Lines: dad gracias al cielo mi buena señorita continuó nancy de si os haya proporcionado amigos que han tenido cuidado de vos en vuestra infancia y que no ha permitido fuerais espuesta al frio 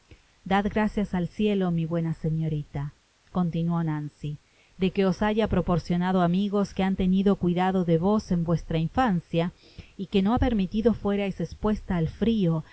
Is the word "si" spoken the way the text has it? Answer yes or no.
no